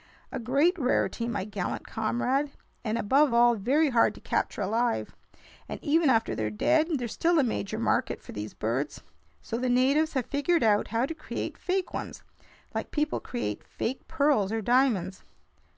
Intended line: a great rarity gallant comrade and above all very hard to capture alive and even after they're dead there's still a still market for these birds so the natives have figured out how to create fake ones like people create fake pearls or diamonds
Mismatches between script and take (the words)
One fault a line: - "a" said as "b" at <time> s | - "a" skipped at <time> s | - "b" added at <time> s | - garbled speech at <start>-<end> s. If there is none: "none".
- "my" added at 1.3 s
- "still" said as "major" at 7.4 s